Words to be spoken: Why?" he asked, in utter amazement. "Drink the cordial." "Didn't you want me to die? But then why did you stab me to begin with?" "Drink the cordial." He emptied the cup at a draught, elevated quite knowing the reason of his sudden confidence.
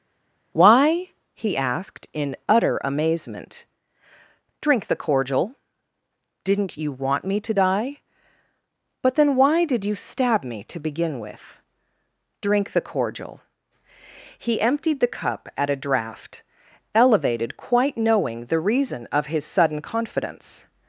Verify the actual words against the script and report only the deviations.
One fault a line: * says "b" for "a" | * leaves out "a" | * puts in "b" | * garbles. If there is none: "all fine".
all fine